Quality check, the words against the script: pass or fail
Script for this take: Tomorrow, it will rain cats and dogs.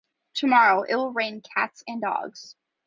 pass